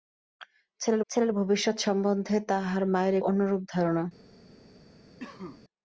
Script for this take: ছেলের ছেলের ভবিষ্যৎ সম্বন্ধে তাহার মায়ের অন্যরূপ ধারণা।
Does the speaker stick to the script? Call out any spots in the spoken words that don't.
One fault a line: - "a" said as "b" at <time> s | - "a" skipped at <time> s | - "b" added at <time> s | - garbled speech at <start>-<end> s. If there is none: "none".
none